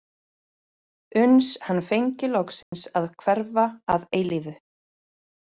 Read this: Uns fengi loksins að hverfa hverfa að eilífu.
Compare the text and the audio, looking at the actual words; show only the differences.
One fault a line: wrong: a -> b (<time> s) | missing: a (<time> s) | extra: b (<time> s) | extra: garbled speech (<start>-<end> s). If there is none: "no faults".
extra: hann (1.7 s)
missing: hverfa (3.7 s)